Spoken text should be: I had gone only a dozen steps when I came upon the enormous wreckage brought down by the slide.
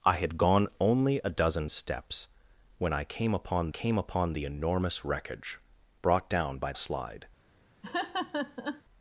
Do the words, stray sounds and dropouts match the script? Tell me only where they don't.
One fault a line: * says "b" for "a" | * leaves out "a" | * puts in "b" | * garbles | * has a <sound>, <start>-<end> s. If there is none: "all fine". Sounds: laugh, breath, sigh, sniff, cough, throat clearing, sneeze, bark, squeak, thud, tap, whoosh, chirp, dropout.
* puts in "came upon"
* leaves out "the"
* has a laugh, 7.8-8.8 s